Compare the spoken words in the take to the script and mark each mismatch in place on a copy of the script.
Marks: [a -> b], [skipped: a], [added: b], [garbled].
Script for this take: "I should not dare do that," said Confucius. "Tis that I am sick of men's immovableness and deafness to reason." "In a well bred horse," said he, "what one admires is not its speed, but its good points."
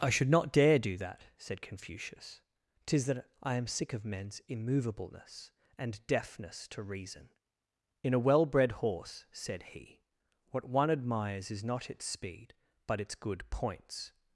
"I should not dare do that," said Confucius. "Tis that I am sick of men's immovableness and deafness to reason." "In a well bred horse," said he, "what one admires is not its speed, but its good points."